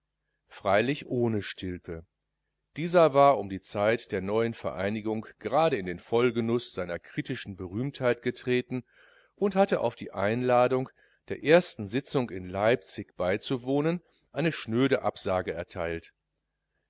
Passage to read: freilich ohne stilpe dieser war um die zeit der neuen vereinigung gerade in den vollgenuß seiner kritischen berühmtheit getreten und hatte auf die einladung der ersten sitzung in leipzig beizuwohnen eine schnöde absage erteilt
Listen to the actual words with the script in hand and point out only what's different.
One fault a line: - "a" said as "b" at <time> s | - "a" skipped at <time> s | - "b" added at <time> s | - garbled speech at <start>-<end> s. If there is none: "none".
none